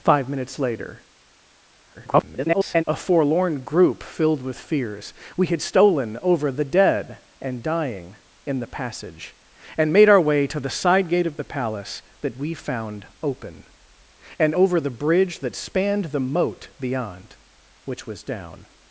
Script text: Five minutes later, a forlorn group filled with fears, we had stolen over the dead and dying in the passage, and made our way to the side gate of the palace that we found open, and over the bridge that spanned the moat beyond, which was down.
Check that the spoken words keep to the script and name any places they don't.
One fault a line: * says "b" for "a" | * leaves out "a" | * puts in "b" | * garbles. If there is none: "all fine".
* garbles